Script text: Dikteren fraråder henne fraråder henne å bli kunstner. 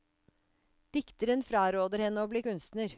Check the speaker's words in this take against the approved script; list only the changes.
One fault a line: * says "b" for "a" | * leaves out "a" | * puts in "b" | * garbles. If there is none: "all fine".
* leaves out "fraråder henne"